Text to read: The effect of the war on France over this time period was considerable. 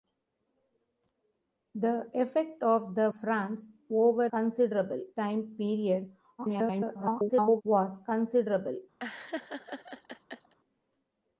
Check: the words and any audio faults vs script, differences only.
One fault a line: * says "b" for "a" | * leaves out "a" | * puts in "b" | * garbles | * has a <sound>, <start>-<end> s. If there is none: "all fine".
* leaves out "war on"
* says "considerable" for "this"
* garbles
* has a laugh, 9.0-10.5 s